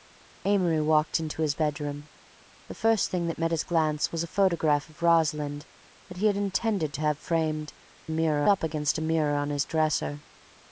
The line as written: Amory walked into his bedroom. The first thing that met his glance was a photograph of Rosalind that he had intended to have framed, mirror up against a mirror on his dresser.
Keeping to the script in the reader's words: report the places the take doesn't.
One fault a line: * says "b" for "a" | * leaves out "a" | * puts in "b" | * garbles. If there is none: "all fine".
all fine